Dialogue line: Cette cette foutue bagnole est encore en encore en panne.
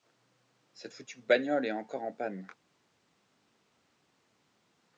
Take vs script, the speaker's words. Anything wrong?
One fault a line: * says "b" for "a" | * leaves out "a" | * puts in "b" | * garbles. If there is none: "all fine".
* leaves out "cette"
* leaves out "encore en"